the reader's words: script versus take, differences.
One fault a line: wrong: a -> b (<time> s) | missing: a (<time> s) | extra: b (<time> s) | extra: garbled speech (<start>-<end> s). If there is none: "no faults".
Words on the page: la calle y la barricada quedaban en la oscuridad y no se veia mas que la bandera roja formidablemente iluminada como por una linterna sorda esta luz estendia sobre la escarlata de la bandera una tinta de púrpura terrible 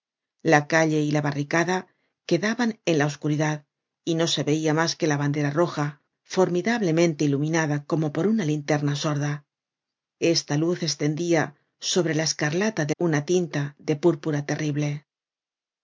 missing: la bandera (12.9 s)